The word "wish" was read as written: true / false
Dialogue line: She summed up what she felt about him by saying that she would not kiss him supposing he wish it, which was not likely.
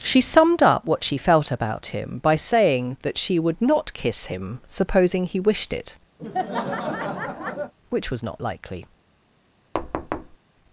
false